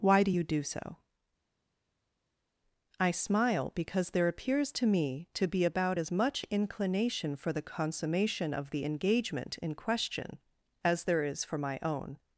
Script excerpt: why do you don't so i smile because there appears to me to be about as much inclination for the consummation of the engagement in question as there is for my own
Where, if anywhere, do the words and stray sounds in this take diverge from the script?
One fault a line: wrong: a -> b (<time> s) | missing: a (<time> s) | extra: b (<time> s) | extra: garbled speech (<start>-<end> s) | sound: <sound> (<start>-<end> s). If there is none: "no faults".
wrong: don't -> do (0.4 s)